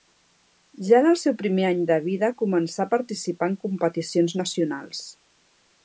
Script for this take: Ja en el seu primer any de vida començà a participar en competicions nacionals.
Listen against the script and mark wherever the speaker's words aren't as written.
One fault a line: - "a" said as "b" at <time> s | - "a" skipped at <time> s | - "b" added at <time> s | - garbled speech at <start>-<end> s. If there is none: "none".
none